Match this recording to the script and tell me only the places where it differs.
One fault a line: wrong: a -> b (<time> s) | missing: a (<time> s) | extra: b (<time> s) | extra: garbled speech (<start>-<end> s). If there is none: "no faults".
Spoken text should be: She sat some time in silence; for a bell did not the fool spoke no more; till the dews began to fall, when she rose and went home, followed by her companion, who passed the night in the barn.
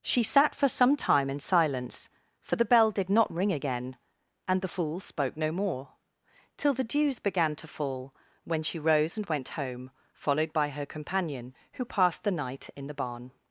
extra: for (0.6 s)
wrong: a -> the (2.5 s)
extra: ring again and (3.3 s)